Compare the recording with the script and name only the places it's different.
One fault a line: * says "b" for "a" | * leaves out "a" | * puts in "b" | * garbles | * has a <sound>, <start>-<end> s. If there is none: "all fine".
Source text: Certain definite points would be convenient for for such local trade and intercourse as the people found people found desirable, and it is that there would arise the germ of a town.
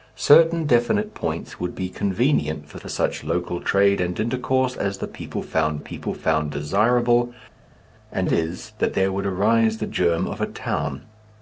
all fine